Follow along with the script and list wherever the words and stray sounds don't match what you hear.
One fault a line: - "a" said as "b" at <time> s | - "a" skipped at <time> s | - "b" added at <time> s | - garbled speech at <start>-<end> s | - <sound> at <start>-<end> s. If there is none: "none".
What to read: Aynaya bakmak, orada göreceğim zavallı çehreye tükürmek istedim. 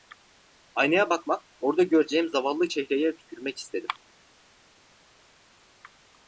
none